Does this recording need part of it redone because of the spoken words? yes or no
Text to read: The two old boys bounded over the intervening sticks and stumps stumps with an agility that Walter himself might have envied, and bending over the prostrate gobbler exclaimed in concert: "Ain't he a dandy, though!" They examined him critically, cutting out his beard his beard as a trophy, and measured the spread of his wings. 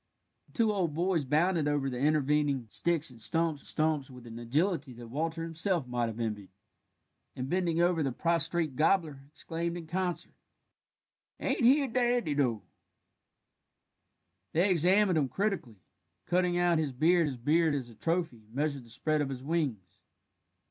no